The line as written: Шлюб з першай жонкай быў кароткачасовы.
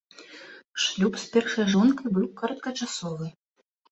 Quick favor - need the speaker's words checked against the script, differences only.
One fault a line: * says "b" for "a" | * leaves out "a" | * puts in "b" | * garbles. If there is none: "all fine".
all fine